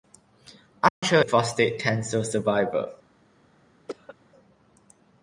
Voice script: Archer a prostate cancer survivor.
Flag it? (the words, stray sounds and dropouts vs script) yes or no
yes